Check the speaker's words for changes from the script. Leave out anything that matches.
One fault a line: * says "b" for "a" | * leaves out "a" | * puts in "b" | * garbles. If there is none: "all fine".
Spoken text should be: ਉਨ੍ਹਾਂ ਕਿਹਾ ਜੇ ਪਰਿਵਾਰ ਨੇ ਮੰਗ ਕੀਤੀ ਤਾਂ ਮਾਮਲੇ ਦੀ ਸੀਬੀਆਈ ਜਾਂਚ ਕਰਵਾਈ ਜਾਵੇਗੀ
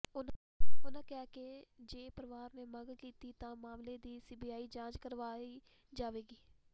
* puts in "ਕਿ"